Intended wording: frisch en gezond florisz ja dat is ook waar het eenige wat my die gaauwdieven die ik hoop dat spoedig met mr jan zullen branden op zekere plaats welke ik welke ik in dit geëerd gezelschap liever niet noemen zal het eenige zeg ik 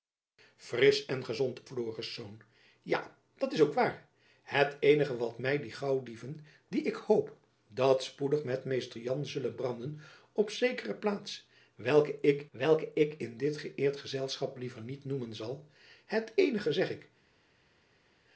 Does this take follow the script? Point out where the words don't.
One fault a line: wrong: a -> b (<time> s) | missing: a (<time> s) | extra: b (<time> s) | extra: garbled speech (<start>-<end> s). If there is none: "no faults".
no faults